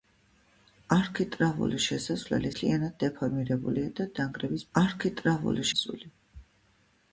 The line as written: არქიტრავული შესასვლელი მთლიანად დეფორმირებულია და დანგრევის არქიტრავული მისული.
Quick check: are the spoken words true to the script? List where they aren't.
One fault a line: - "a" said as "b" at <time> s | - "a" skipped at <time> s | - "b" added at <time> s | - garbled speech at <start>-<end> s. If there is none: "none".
none